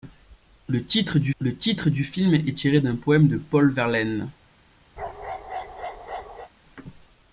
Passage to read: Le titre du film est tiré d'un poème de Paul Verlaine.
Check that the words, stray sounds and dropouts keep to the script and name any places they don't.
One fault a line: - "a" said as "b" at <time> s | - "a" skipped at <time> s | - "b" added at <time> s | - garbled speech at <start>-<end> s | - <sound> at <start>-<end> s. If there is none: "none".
- "le titre du" added at 1.4 s
- bark at 5.0-6.5 s